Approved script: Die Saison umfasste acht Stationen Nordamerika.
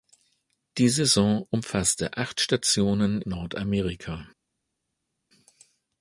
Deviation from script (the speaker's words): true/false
false